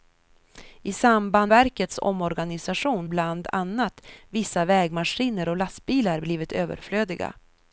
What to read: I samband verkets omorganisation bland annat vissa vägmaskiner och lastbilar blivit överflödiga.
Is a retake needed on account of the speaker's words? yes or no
no